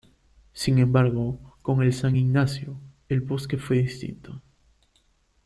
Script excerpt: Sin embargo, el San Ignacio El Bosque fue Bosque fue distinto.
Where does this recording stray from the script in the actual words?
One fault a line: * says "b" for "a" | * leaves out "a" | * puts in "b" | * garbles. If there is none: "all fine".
* puts in "con"
* leaves out "Bosque fue"